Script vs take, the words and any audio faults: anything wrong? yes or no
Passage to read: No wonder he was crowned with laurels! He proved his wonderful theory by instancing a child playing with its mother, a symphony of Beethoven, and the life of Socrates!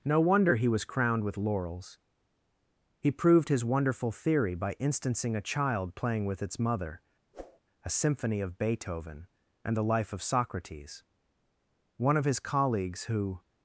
yes